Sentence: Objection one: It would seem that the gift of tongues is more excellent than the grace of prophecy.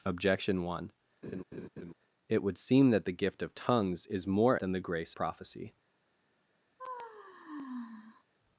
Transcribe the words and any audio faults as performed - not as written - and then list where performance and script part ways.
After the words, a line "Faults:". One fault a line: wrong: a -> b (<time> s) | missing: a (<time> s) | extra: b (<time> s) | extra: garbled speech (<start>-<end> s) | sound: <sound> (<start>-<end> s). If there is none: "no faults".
Objection one: It would seem that the gift of tongues is more than the grace prophecy.
Faults:
sound: laugh (1.2-1.9 s)
missing: excellent (4.6 s)
missing: of (5.2 s)
sound: sigh (6.8-8.2 s)